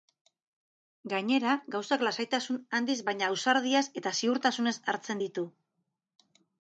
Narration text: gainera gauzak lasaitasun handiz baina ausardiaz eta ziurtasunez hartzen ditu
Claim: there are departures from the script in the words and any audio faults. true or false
false